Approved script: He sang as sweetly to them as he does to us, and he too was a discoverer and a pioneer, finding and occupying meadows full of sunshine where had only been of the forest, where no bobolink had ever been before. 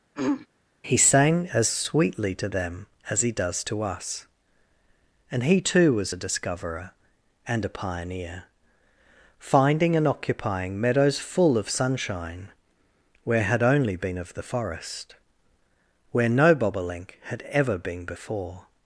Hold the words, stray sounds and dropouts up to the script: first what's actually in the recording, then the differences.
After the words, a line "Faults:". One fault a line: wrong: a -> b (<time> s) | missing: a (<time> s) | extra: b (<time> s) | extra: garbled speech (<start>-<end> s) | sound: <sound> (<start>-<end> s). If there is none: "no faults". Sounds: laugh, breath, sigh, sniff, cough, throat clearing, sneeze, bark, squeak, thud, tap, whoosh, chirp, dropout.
He sang as sweetly to them as he does to us, and he too was a discoverer and a pioneer, finding and occupying meadows full of sunshine where had only been of the forest, where no bobolink had ever been before.
Faults:
sound: throat clearing (0.1-0.5 s)